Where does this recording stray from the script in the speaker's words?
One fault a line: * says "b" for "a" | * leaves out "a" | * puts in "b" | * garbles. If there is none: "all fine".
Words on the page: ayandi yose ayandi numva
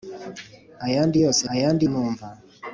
all fine